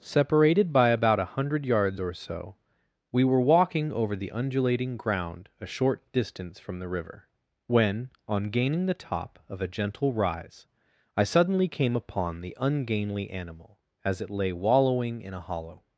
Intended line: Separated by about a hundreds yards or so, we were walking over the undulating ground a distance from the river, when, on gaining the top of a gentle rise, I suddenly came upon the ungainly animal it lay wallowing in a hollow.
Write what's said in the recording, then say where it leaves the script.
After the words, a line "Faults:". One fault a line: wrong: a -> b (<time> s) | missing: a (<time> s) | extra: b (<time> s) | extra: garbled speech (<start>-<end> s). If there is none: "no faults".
Separated by about a hundred yards or so, we were walking over the undulating ground a short distance from the river, when, on gaining the top of a gentle rise, I suddenly came upon the ungainly animal as it lay wallowing in a hollow.
Faults:
wrong: hundreds -> hundred (1.4 s)
extra: short (5.7 s)
extra: as (14.0 s)